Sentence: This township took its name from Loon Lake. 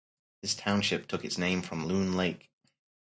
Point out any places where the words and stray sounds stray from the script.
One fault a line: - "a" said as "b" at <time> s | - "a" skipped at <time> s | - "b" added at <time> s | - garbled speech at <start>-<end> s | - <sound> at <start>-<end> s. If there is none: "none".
none